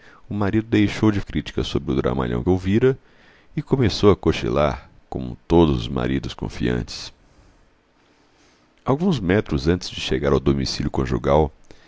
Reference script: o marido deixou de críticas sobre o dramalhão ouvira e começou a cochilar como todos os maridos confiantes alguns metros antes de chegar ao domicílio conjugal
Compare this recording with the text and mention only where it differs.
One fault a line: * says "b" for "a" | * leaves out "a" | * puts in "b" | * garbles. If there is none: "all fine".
all fine